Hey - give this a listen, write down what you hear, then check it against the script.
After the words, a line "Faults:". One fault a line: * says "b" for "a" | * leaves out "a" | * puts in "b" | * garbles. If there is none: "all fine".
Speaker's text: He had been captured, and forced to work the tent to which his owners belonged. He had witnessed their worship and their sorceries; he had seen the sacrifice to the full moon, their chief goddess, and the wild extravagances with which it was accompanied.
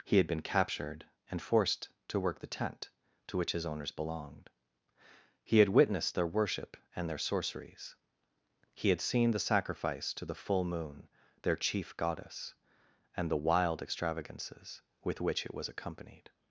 He had been captured, and forced to work the tent to which his owners belonged. He had witnessed their worship and their sorceries; he had seen the sacrifice to the full moon, their chief goddess, and the wild extravagances with which it was accompanied.
Faults:
all fine